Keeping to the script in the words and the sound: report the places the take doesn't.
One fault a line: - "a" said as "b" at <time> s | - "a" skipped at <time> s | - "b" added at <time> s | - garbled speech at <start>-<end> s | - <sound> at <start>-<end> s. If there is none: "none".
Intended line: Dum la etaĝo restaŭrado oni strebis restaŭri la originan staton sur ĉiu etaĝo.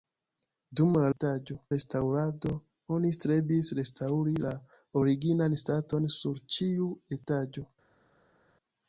none